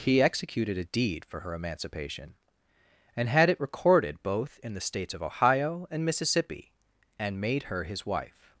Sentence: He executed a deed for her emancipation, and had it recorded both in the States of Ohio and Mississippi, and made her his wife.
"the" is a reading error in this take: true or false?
false